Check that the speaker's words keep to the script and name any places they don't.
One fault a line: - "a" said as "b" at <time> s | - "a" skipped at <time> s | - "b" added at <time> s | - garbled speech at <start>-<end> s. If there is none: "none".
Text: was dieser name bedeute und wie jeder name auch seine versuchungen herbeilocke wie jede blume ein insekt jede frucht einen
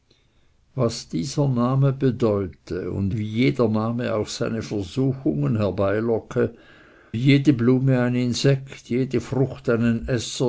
none